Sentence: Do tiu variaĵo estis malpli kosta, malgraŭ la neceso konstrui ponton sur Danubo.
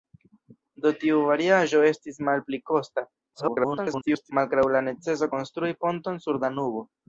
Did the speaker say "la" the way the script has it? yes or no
yes